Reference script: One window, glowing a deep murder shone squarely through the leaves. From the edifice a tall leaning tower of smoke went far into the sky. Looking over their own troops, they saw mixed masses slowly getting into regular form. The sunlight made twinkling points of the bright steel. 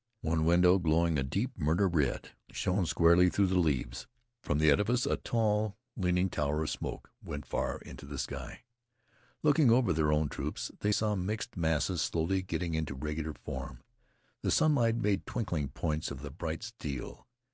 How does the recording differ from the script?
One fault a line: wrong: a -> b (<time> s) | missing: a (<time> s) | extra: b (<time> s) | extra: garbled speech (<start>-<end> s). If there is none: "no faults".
extra: red (1.9 s)